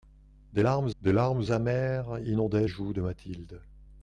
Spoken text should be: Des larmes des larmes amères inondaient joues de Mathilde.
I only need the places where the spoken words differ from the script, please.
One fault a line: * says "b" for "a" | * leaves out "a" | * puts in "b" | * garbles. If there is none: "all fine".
all fine